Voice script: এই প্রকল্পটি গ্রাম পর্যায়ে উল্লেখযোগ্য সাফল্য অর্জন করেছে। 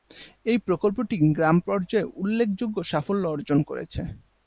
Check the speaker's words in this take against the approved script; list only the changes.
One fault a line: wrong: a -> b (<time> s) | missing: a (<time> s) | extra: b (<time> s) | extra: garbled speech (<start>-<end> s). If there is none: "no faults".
no faults